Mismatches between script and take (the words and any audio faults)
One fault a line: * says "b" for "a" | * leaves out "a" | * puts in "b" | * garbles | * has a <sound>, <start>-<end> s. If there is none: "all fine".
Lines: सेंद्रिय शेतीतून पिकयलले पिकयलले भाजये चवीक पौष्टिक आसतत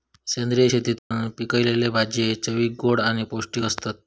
* has a dropout, 1.0-1.1 s
* leaves out "पिकयलले"
* puts in "गोड आणि"